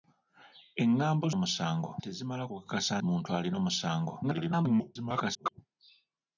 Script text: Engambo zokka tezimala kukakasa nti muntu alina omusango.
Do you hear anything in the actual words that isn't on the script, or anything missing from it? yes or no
yes